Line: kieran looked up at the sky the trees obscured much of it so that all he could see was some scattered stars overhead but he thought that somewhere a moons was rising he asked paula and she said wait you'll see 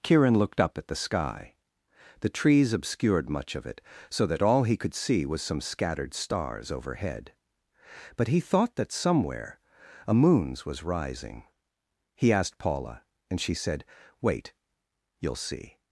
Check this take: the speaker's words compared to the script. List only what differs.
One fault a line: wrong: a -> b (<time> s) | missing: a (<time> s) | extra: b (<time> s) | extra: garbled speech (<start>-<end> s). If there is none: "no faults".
no faults